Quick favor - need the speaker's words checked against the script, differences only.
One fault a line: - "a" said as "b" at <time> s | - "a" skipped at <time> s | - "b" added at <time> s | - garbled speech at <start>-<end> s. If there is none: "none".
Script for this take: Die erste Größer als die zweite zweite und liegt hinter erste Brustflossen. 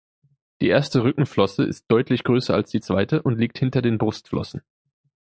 - "Rückenflosse ist deutlich" added at 1.0 s
- "zweite" skipped at 3.2 s
- "erste" said as "den" at 3.8 s